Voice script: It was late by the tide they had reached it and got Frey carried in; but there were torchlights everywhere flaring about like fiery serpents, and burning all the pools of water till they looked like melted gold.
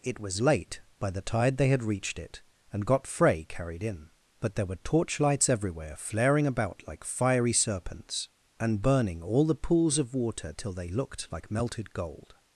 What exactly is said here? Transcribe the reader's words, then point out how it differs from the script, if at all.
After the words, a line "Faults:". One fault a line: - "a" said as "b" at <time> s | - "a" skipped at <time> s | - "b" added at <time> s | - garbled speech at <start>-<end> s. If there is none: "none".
It was late by the tide they had reached it and got Frey carried in; but there were torchlights everywhere flaring about like fiery serpents, and burning all the pools of water till they looked like melted gold.
Faults:
none